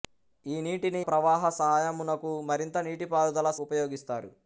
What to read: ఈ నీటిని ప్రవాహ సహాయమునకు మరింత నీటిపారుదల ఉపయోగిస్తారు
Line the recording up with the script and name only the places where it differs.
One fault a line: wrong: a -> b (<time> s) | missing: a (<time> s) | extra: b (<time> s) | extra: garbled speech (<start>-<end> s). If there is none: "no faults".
no faults